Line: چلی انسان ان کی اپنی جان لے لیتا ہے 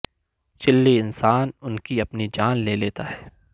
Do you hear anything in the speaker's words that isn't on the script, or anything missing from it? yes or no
no